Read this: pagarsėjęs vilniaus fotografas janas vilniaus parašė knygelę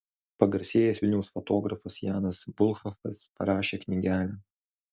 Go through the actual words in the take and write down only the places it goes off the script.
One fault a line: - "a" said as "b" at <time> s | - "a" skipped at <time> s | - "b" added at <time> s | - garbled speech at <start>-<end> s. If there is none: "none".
- "vilniaus" said as "bulhakas" at 2.6 s